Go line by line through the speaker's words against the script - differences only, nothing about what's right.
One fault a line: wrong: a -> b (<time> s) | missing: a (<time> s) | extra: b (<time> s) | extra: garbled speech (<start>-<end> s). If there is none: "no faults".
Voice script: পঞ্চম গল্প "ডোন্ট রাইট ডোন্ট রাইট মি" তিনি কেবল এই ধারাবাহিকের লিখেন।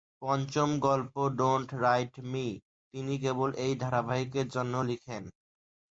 missing: ডোন্ট রাইট (2.1 s)
extra: জন্য (4.6 s)